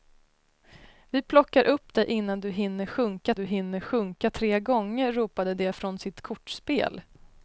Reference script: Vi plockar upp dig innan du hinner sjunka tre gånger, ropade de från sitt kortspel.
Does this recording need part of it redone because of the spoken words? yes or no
yes